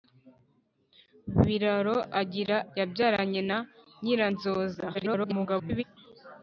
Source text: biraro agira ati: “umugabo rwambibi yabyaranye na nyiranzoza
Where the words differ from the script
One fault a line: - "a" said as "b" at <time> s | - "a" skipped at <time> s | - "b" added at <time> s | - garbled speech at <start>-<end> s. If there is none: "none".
- "ati umugabo rwambibi" skipped at 2.6 s
- garbled speech at 4.9-5.8 s